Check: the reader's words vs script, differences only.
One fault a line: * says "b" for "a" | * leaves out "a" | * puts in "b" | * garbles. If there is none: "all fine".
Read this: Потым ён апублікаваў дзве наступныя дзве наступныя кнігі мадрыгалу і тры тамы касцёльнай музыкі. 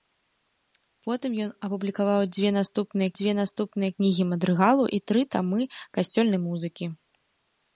all fine